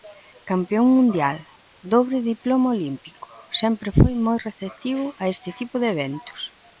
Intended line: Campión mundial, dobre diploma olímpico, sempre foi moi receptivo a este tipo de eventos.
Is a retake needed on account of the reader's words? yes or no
no